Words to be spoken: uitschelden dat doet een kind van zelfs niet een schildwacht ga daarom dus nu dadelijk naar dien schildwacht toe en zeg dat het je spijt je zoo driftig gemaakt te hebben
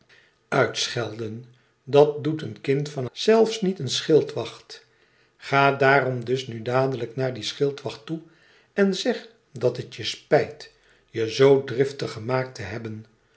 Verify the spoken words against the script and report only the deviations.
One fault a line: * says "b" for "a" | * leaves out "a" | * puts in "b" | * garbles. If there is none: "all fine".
all fine